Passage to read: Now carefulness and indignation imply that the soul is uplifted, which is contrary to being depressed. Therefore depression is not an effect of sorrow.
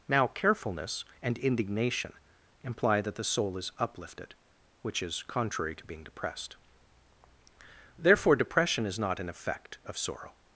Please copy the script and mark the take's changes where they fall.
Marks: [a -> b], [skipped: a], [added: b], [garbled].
Now carefulness and indignation imply that the soul is uplifted, which is contrary to being depressed. Therefore depression is not an effect of sorrow.